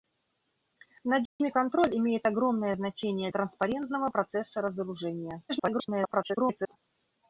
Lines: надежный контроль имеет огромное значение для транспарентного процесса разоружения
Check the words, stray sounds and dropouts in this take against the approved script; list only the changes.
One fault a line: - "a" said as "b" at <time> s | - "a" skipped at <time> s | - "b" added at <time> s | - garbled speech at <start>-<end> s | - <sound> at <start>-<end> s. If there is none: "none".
- dropout at 1.3-1.4 s
- "для" skipped at 3.3 s
- garbled speech at 5.5-6.8 s